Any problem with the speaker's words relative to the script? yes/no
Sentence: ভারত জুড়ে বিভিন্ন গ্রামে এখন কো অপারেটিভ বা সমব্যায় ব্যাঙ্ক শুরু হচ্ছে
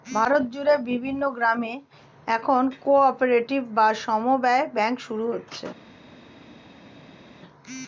no